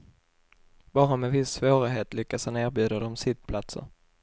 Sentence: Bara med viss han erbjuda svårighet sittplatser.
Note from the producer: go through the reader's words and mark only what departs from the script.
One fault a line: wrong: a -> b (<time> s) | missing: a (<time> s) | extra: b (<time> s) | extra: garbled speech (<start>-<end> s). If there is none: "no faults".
extra: svårighet lyckas (1.5 s)
wrong: svårighet -> dem (3.0 s)